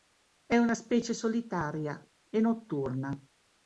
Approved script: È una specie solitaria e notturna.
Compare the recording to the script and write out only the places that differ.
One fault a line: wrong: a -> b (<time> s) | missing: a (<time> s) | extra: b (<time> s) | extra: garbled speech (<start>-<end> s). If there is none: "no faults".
no faults